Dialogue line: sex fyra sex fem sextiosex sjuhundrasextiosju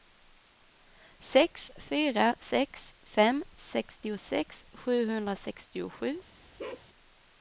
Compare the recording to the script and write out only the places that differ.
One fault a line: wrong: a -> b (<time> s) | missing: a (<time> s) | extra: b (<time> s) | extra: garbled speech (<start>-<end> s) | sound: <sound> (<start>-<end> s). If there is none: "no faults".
sound: bark (6.6-6.9 s)